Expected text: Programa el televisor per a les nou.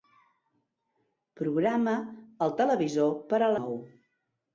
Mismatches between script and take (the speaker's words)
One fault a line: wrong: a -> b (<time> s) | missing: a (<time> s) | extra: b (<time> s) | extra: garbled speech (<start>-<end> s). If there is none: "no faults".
missing: les (3.5 s)